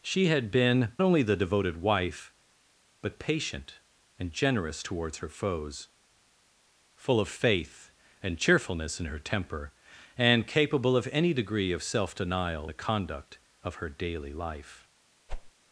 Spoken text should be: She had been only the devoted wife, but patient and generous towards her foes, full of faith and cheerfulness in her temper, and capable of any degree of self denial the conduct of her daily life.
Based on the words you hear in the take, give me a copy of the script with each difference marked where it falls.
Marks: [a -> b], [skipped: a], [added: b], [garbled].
She had been only the devoted wife, but patient and generous towards her foes, full of faith and cheerfulness in her temper, and capable of any degree of self denial the conduct of her daily life.